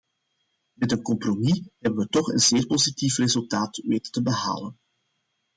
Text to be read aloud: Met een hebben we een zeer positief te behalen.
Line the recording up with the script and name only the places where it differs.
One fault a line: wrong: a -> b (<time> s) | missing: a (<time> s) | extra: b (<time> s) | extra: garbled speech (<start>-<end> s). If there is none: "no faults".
extra: compromis (1.0 s)
extra: toch (2.1 s)
extra: resultaat weten (3.2 s)